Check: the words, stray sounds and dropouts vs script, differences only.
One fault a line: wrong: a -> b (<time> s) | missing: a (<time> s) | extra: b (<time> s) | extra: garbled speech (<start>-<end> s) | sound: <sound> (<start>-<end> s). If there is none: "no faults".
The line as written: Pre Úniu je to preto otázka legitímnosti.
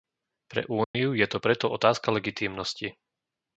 sound: dropout (0.8-0.9 s)